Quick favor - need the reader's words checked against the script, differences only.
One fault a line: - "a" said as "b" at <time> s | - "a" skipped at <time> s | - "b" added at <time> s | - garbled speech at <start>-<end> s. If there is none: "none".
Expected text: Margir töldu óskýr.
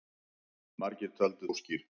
none